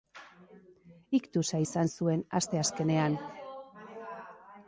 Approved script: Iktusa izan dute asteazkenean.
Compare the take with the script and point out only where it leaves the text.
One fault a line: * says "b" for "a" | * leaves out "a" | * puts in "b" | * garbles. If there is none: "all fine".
* says "zuen" for "dute"